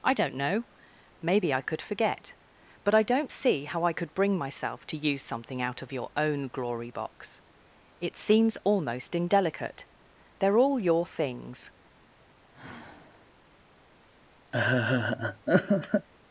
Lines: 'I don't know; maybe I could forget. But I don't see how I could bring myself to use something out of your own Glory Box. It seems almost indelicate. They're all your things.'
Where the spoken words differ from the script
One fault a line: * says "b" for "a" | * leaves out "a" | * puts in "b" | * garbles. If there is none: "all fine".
all fine